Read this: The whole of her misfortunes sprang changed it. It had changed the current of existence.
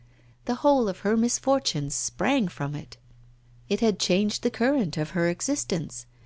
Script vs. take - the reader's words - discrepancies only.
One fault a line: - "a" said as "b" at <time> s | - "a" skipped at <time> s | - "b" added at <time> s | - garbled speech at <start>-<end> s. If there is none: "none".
- "changed" said as "from" at 2.5 s
- "her" added at 5.1 s